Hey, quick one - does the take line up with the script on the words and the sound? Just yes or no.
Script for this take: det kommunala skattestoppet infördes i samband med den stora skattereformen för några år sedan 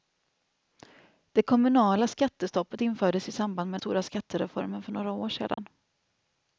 no